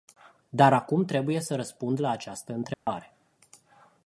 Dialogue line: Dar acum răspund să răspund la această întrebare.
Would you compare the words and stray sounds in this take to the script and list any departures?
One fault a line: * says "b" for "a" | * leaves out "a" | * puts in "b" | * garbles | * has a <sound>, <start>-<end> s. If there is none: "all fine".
* says "trebuie" for "răspund"
* has a dropout, 2.7-2.9 s